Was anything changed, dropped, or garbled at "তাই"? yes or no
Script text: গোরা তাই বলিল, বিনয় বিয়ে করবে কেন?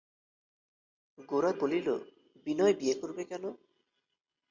yes